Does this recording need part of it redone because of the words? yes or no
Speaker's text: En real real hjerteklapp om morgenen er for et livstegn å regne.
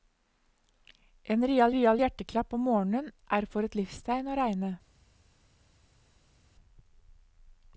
no